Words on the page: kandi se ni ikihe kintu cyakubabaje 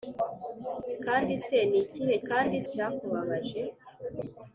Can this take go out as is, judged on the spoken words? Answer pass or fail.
fail